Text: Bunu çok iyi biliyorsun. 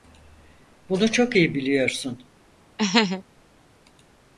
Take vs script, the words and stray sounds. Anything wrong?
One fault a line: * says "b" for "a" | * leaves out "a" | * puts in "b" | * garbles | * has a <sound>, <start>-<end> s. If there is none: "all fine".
* has a laugh, 2.8-3.2 s